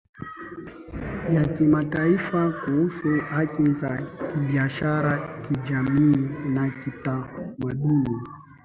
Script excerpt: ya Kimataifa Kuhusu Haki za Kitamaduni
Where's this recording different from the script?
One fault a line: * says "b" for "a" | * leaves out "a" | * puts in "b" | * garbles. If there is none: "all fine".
* puts in "Kibiashara Kijamii na"